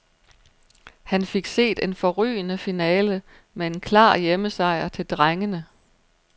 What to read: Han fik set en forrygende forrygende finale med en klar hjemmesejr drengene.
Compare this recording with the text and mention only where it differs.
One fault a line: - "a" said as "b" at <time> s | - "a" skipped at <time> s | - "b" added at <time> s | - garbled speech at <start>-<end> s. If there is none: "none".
- "forrygende" skipped at 2.6 s
- "til" added at 4.9 s